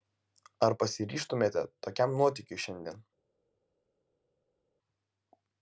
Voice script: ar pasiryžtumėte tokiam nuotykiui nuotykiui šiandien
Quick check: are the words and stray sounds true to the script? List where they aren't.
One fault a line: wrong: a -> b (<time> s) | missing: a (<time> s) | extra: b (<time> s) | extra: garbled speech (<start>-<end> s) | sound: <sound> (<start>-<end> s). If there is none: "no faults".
missing: nuotykiui (2.6 s)